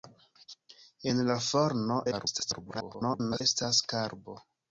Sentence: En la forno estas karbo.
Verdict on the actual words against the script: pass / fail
fail